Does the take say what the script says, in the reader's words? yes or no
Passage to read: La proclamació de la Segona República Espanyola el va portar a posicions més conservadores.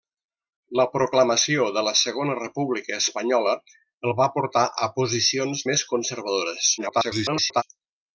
no